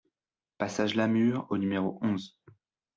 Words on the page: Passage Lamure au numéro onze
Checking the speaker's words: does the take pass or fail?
pass